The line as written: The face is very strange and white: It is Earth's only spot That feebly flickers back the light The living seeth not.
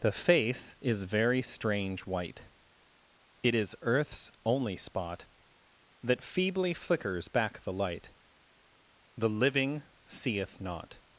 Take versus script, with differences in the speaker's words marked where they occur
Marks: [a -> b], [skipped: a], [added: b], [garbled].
The face is very strange [skipped: and] white: It is Earth's only spot That feebly flickers back the light The living seeth not.